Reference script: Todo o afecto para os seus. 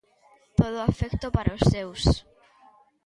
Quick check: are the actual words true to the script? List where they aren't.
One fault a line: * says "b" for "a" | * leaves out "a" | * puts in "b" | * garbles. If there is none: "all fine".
all fine